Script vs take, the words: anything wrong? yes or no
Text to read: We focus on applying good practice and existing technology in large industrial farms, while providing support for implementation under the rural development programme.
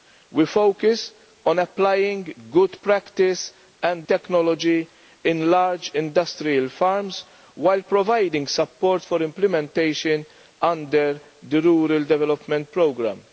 yes